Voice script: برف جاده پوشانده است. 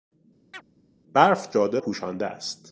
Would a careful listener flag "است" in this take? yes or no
no